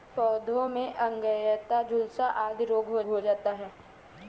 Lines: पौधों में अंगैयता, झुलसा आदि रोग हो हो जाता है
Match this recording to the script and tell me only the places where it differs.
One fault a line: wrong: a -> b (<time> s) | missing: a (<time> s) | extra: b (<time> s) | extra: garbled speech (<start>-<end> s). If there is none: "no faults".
no faults